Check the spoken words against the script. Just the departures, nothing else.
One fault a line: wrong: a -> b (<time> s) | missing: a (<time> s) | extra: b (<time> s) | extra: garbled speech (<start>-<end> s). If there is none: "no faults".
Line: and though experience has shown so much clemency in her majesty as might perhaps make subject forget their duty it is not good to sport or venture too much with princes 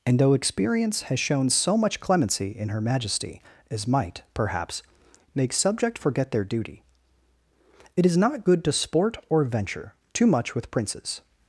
no faults